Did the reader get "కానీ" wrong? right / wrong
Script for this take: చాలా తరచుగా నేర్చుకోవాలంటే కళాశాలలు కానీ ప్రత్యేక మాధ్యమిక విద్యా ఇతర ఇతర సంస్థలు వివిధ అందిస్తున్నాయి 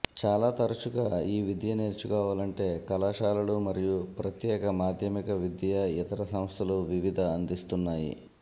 wrong